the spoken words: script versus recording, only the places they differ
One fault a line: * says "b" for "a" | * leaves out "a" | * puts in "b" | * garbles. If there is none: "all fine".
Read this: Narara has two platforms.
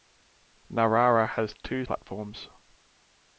all fine